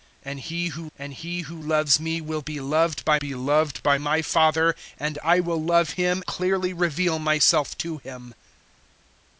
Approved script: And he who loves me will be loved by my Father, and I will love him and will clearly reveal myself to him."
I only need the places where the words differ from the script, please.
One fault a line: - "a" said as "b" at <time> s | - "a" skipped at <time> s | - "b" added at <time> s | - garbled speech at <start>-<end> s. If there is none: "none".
- "and he who" added at 1.0 s
- "be loved by" added at 3.1 s
- "and will" skipped at 6.2 s